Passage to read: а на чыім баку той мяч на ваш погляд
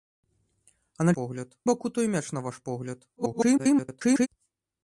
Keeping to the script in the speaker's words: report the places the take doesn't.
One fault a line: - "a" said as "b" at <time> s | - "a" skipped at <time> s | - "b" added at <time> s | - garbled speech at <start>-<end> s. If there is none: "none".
- "чыім" said as "погляд" at 1.2 s
- garbled speech at 3.2-4.3 s